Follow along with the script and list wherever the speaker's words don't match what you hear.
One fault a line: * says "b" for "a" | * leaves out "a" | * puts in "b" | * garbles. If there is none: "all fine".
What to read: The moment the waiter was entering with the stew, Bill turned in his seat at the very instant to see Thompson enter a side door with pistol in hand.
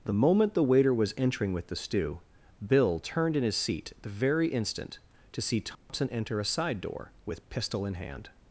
* leaves out "at"